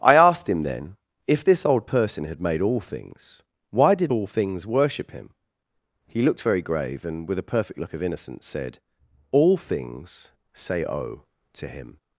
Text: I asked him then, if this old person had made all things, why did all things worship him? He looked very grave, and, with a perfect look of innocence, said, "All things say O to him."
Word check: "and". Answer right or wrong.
right